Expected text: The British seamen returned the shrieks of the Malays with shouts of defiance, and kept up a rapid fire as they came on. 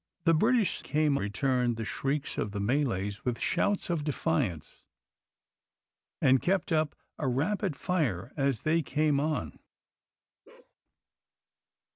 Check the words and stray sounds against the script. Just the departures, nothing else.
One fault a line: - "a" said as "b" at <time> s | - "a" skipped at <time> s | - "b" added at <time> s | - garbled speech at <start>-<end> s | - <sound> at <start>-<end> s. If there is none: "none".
- "seamen" said as "came" at 0.8 s
- bark at 10.4-10.7 s